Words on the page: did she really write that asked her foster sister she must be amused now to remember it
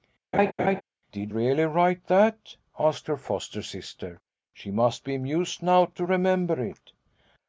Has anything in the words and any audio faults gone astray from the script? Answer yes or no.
yes